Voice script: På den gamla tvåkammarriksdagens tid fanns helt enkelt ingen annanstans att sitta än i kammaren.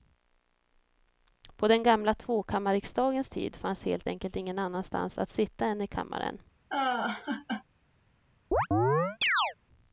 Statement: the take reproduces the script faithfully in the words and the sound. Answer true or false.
false